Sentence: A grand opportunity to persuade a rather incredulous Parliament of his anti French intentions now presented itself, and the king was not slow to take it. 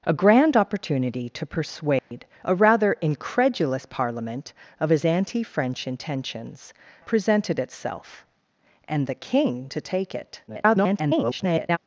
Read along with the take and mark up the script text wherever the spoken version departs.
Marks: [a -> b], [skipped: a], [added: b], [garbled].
A grand opportunity to persuade a rather incredulous Parliament of his anti French intentions [skipped: now] presented itself, and the king [skipped: was not slow] to take it. [garbled]